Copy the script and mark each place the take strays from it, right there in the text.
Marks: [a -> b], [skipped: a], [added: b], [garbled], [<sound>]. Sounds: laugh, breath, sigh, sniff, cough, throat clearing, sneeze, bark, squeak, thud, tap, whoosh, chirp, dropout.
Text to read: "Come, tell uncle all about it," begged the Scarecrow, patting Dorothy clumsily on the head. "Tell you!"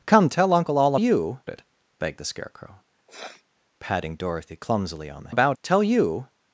"Come, tell uncle all [about -> you] it," begged the Scarecrow, [sniff] patting Dorothy clumsily on the [head. -> about] "Tell you!"